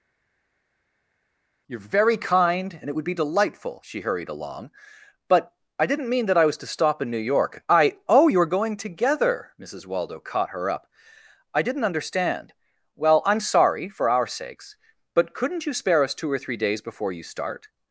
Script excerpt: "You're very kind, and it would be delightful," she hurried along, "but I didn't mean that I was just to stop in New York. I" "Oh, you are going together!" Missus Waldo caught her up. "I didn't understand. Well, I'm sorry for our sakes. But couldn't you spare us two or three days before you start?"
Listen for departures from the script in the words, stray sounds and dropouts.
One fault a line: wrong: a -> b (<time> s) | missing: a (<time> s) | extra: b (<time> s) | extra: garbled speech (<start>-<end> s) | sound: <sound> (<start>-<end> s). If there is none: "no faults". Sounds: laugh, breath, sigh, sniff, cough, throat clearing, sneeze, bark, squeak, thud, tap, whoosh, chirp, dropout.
missing: just (6.6 s)